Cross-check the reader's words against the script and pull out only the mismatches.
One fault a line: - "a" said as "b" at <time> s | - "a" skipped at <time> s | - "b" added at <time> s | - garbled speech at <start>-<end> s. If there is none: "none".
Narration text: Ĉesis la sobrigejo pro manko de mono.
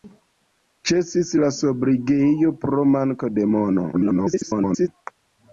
- garbled speech at 3.9-4.9 s